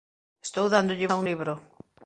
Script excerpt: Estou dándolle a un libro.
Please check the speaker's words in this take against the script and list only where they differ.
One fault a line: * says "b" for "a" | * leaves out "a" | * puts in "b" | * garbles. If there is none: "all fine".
all fine